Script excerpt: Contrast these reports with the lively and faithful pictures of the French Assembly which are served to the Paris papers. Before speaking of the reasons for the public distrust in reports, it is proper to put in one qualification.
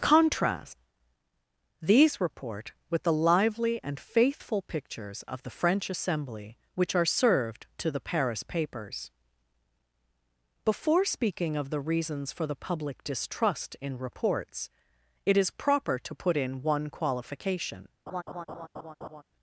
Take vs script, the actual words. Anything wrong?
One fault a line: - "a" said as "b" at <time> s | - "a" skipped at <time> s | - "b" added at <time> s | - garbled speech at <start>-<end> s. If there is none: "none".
- "reports" said as "report" at 2.2 s